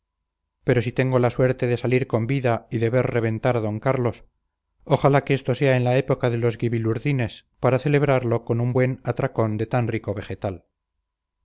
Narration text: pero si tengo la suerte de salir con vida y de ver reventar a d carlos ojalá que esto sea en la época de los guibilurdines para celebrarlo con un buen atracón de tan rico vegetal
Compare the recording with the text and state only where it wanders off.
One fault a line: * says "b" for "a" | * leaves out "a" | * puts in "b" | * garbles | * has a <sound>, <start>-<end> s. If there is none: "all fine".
all fine